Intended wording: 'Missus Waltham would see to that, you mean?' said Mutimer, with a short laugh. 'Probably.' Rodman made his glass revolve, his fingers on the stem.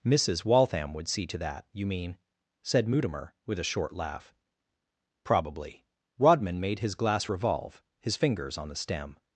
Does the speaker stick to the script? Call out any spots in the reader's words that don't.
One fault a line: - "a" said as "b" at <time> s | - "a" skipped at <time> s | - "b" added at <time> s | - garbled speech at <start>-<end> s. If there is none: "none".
none